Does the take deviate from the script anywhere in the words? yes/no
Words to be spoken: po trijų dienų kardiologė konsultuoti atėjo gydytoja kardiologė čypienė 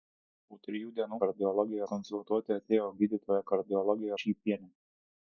no